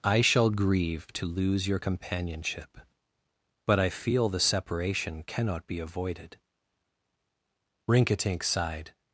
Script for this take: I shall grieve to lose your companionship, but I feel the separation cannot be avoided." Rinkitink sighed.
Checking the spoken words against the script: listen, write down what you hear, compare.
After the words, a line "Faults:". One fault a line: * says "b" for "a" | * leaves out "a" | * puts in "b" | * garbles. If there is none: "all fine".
I shall grieve to lose your companionship, but I feel the separation cannot be avoided." Rinkitink sighed.
Faults:
all fine